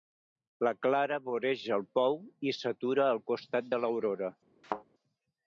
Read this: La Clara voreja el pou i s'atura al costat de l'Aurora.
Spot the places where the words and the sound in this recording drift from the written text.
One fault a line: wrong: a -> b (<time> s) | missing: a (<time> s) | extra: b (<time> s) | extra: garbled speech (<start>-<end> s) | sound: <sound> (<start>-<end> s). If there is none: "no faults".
sound: thud (4.6-4.8 s)